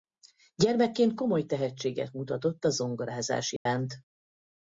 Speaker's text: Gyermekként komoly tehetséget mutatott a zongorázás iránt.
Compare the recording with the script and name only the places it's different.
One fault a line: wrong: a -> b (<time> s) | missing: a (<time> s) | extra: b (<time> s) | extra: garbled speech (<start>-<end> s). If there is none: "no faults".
no faults